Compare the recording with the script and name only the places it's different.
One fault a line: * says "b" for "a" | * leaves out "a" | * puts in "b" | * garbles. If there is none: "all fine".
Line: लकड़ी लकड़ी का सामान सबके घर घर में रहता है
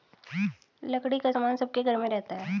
* leaves out "लकड़ी"
* leaves out "घर"